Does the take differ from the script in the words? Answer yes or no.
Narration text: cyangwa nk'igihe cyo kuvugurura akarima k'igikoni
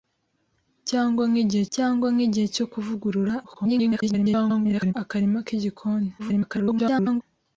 yes